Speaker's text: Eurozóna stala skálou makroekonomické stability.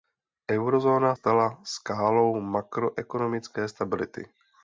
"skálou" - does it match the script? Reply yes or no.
yes